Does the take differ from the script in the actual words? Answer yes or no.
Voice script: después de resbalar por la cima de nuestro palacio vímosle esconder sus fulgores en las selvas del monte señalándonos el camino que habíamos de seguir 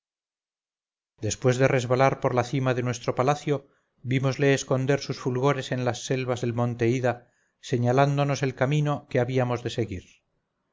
yes